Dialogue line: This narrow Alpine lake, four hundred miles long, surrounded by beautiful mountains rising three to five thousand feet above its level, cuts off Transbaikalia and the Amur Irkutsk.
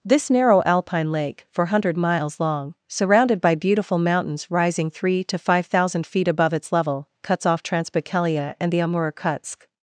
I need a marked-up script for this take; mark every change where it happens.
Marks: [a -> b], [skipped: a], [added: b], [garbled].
This narrow Alpine lake, four hundred miles long, surrounded by beautiful mountains rising three to five thousand feet above its level, cuts off Transbaikalia and the Amur Irkutsk.